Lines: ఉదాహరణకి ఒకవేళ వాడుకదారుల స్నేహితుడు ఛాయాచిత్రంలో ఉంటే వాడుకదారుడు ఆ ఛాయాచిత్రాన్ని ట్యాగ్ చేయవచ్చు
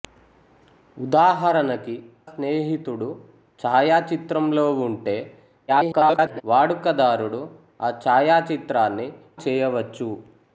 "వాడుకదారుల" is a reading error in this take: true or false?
true